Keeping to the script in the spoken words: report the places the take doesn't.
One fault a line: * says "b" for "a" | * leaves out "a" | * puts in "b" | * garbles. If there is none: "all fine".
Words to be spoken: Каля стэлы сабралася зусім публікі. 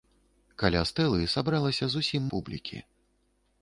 all fine